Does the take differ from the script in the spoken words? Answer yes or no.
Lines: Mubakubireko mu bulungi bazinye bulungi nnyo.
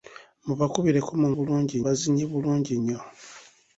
no